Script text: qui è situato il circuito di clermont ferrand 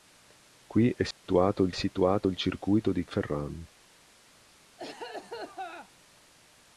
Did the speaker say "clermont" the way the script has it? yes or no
no